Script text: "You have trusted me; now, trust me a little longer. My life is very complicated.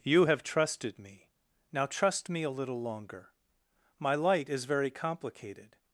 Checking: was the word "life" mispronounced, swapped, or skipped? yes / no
yes